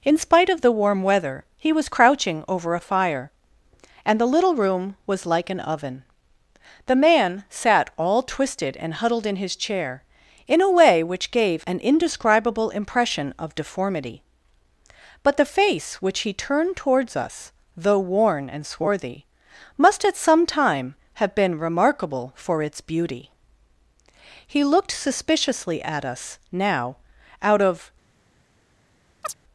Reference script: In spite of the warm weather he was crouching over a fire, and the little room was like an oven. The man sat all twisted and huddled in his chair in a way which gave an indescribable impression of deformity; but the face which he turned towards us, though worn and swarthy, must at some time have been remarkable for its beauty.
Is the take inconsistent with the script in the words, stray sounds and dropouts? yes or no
yes